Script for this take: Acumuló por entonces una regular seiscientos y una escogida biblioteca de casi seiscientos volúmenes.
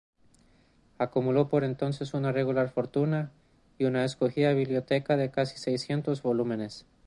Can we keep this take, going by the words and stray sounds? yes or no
no